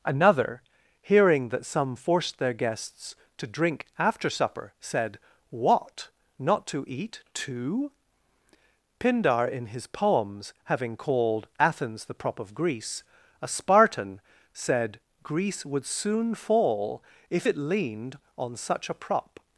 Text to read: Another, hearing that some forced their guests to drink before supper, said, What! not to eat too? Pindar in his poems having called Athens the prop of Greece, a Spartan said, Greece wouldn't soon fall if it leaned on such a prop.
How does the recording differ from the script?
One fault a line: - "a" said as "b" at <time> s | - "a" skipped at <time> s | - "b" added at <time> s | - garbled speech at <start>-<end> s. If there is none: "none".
- "before" said as "after" at 4.0 s
- "wouldn't" said as "would" at 15.7 s